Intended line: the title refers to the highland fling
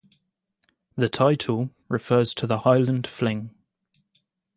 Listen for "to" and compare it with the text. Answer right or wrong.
right